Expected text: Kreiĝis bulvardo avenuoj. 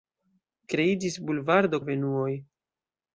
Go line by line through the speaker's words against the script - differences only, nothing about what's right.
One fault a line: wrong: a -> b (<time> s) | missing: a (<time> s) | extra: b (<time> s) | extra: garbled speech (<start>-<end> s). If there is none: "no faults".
no faults